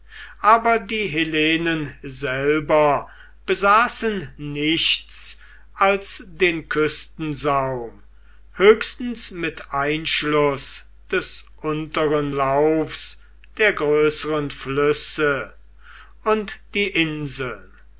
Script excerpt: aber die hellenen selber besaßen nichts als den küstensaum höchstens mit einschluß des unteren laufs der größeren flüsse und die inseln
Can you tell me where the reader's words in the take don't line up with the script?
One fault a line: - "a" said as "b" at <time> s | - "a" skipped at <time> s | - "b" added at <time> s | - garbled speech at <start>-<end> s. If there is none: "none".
none